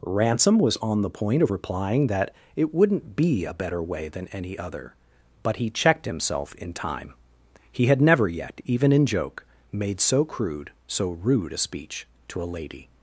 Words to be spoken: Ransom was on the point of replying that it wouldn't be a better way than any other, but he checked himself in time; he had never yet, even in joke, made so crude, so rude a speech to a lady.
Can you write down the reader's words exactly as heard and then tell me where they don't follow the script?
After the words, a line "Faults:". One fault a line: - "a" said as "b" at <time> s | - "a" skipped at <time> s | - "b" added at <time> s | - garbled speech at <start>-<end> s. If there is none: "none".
Ransom was on the point of replying that it wouldn't be a better way than any other, but he checked himself in time; he had never yet, even in joke, made so crude, so rude a speech to a lady.
Faults:
none